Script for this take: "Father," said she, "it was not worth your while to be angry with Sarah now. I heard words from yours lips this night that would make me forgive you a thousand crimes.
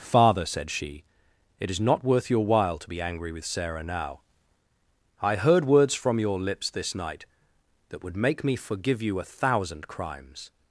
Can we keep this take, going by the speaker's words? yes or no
no